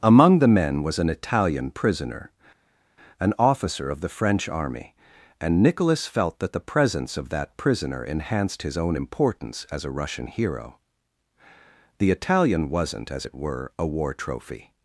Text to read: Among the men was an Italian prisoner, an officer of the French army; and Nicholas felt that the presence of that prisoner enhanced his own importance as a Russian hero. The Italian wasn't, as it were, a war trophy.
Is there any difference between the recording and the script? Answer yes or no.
no